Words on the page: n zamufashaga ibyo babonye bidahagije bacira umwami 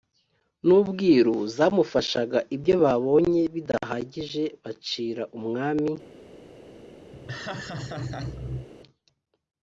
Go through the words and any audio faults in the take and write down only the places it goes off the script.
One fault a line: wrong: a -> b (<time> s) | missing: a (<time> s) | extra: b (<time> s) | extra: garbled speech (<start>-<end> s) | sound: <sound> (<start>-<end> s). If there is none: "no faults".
extra: ubwiru (0.8 s)
sound: laugh (7.1-8.7 s)